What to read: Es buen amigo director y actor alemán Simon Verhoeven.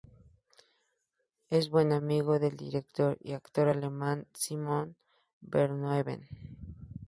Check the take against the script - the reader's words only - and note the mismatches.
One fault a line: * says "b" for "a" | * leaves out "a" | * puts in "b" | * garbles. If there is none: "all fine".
* puts in "del"